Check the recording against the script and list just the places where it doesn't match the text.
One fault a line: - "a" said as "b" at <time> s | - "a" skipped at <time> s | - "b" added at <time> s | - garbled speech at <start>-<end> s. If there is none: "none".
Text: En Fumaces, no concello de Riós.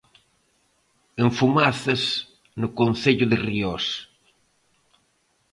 none